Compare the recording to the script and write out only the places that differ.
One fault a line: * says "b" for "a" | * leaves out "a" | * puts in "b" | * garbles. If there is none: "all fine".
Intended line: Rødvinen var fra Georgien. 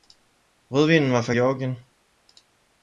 all fine